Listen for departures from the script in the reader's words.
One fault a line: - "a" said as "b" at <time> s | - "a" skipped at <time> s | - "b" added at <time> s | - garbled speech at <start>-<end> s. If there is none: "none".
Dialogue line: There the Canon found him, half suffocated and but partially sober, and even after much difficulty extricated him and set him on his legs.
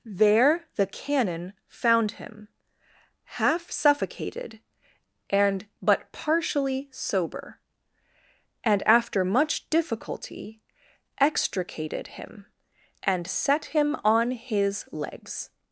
- "even" skipped at 8.8 s